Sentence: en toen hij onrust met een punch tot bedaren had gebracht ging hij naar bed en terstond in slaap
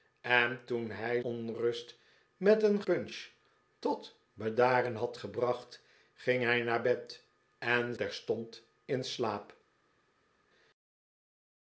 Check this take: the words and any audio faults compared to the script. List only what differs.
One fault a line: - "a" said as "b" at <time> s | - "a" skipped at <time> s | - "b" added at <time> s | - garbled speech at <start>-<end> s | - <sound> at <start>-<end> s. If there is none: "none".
none